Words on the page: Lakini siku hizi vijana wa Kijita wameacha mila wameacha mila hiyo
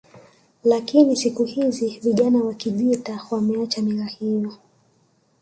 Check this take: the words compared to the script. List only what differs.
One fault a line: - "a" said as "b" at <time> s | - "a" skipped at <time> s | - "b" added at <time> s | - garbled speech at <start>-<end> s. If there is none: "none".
- "wameacha mila" skipped at 4.0 s